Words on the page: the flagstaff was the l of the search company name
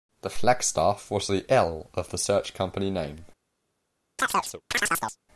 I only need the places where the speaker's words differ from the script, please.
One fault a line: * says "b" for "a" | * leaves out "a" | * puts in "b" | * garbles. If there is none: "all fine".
all fine